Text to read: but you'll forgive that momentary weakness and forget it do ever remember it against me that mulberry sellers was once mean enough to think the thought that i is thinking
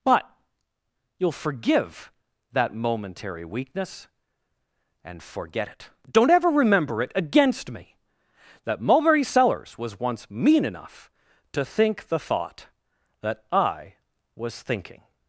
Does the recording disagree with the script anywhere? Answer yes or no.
yes